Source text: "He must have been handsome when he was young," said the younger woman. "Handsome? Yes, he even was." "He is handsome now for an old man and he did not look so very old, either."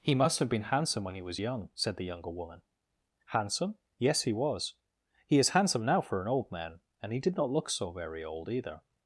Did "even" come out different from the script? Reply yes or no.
yes